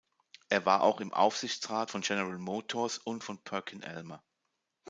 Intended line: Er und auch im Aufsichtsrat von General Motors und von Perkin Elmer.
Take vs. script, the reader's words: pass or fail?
fail